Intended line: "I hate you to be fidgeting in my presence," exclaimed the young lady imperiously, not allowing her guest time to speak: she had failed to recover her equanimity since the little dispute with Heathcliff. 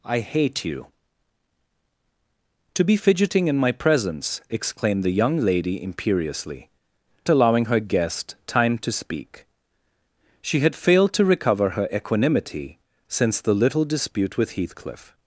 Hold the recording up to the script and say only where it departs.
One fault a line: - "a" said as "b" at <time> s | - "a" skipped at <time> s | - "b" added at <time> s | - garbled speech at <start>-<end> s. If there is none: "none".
- "not" skipped at 6.7 s